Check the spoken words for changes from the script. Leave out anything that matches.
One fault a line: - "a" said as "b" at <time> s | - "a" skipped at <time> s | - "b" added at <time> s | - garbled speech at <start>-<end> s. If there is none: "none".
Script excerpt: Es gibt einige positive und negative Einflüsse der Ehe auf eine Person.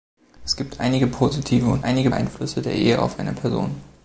- "negative" said as "einige" at 1.8 s